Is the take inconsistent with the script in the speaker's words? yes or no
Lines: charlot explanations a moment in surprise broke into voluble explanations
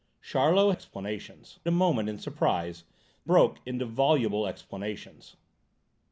no